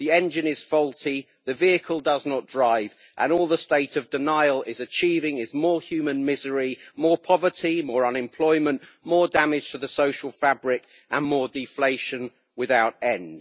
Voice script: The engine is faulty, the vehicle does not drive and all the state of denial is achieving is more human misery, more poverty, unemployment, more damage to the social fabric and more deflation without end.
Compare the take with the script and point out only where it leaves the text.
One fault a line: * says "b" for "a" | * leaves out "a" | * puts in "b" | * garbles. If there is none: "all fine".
* puts in "more"